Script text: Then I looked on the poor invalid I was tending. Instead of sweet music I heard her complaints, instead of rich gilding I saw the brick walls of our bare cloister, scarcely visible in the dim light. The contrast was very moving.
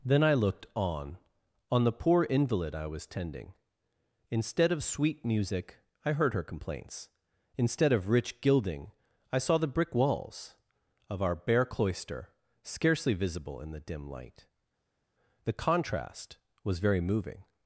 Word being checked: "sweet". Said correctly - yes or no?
yes